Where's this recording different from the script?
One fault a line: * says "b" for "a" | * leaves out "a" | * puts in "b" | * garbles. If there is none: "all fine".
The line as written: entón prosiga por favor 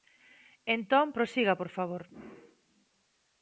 all fine